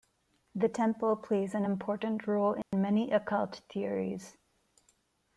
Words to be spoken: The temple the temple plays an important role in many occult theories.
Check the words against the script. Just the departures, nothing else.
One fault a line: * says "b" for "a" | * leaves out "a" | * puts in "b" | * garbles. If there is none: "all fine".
* leaves out "the temple"